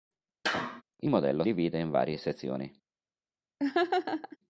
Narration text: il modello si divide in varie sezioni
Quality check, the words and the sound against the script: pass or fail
fail